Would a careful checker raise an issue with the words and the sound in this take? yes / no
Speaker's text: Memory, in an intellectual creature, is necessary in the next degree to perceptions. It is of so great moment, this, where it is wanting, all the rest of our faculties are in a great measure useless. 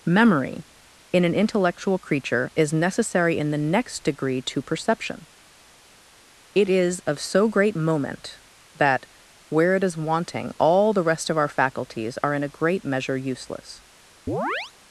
yes